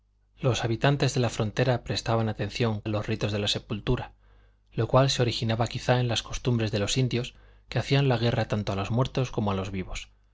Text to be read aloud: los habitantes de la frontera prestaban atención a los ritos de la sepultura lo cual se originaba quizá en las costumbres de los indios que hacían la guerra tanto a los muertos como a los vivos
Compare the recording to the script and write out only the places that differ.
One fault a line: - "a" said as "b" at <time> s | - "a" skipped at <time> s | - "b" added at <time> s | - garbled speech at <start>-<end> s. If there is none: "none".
none